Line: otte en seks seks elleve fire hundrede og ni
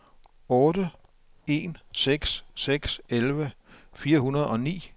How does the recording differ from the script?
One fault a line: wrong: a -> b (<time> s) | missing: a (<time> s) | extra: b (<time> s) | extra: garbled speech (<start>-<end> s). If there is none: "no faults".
no faults